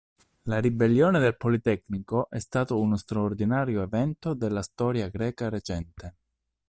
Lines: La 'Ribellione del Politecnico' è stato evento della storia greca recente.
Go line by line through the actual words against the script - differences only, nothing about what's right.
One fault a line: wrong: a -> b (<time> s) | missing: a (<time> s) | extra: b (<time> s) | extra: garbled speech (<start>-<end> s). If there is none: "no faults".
extra: uno straordinario (2.8 s)